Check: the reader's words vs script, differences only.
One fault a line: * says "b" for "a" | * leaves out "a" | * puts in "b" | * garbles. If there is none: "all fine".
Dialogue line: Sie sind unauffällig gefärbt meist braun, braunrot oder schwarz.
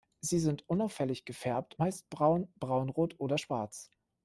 all fine